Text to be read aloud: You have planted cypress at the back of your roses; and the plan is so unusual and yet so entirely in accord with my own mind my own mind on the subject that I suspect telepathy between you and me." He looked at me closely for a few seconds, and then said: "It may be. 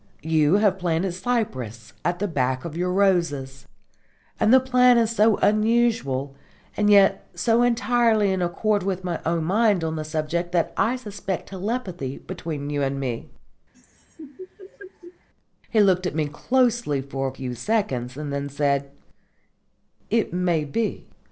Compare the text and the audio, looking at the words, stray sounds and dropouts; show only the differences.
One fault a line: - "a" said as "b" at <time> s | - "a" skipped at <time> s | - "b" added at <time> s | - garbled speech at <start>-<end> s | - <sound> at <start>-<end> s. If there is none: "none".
- "my own mind" skipped at 9.8 s
- laugh at 13.7-15.3 s